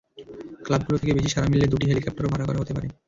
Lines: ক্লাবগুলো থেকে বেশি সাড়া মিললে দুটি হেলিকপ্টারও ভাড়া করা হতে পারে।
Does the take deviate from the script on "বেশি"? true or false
false